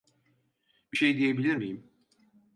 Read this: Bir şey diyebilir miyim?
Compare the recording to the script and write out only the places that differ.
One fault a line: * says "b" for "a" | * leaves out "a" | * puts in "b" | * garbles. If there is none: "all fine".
all fine